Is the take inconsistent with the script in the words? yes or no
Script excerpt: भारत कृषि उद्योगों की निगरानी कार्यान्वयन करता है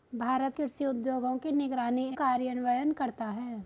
no